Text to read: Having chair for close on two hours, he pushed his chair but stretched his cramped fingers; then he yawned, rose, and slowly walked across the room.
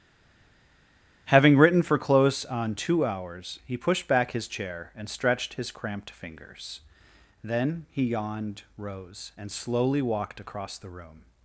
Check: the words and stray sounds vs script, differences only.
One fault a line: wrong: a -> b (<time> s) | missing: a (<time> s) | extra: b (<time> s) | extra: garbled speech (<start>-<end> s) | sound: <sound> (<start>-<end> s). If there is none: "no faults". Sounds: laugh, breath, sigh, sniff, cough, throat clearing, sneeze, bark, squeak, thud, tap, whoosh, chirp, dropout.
wrong: chair -> written (1.6 s)
extra: back (4.1 s)
wrong: but -> and (5.0 s)